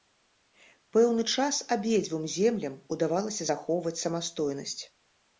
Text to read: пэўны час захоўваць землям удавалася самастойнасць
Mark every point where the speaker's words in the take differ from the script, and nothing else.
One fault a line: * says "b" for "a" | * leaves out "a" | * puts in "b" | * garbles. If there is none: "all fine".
* says "абедзвюм" for "захоўваць"
* puts in "захоўваць"